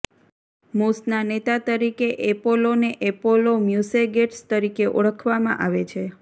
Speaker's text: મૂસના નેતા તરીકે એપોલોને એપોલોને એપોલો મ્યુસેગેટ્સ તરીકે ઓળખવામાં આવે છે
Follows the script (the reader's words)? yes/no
no